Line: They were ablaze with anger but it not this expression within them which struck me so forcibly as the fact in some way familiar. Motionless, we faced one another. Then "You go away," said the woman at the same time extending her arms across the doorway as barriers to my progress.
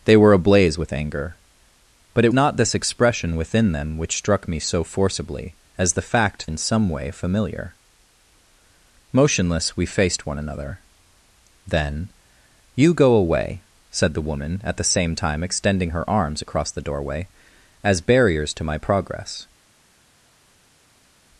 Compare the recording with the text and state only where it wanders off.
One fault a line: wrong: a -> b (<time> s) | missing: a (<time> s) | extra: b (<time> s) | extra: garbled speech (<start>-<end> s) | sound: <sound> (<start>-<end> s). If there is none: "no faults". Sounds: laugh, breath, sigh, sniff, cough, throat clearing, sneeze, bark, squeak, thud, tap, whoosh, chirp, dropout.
no faults